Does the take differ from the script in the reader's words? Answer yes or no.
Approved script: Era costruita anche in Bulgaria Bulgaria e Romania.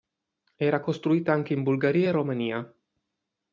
yes